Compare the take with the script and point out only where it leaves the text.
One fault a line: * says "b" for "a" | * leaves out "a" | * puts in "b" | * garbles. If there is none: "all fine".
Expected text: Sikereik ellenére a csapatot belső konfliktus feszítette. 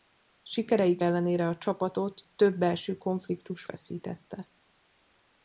* puts in "több"